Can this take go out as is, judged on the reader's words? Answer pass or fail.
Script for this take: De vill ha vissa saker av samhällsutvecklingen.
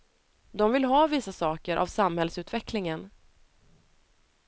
pass